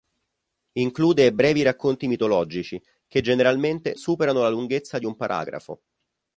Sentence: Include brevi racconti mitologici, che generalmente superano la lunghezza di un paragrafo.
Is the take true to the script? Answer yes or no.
yes